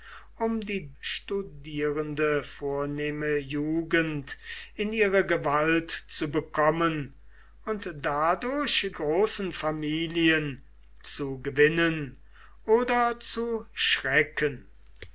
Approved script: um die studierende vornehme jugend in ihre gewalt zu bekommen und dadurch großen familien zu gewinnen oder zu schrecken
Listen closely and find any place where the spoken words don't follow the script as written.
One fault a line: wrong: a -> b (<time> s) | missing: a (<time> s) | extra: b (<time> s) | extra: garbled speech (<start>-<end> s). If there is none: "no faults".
no faults